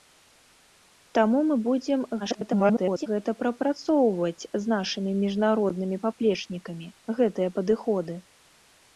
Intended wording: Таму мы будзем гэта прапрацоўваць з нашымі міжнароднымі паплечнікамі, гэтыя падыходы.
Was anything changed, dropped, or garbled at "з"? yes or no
no